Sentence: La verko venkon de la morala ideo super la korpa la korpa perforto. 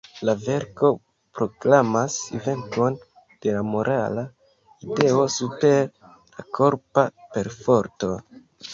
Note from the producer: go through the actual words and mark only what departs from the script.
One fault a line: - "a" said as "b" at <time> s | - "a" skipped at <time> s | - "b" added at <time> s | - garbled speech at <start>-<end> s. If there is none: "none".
- "proklamas" added at 1.4 s
- "la korpa" skipped at 7.1 s